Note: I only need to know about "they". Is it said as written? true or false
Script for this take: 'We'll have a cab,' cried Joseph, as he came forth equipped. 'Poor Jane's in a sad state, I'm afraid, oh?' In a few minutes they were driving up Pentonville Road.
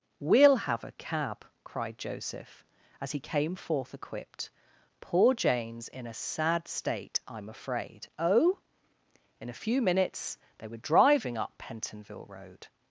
true